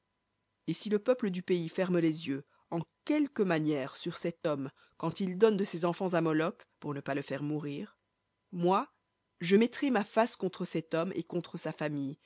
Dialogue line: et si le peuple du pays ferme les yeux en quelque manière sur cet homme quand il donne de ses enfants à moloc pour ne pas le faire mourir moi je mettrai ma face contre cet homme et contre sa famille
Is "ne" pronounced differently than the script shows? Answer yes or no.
no